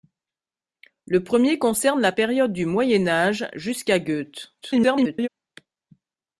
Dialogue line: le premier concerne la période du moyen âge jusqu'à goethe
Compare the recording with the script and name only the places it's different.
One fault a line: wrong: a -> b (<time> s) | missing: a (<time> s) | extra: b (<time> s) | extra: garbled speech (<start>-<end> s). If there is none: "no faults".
extra: garbled speech (4.6-5.3 s)